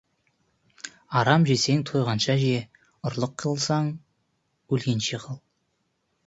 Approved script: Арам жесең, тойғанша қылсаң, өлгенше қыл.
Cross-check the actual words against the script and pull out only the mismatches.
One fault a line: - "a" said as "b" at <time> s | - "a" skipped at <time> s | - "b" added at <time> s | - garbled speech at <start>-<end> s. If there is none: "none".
- "же ұрлық" added at 2.4 s